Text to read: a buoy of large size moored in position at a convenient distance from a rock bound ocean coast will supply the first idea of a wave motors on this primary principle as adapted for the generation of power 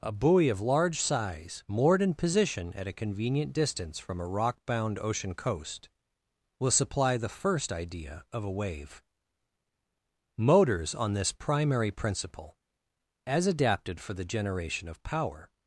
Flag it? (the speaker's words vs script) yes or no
no